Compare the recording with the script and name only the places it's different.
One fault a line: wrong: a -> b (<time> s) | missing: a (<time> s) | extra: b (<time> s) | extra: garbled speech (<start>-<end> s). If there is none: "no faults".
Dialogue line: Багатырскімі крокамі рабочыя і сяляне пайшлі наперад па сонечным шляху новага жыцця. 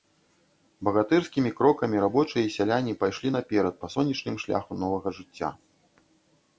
no faults